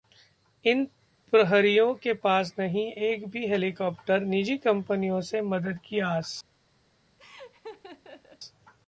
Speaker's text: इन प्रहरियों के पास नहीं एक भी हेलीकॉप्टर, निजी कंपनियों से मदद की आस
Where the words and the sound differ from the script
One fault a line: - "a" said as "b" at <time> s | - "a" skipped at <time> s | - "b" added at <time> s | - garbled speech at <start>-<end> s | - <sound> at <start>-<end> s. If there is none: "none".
- laugh at 7.2-8.4 s